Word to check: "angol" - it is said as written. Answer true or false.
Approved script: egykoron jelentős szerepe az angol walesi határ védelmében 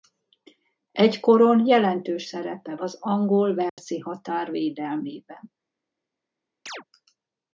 true